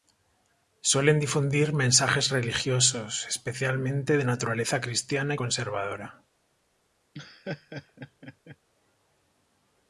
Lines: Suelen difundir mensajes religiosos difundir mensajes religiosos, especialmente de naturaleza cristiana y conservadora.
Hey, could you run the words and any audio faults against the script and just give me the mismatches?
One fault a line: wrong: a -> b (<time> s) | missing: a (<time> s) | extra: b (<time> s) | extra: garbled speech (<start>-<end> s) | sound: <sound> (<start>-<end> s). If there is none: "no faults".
missing: difundir mensajes religiosos (3.3 s)
sound: laugh (7.1-8.6 s)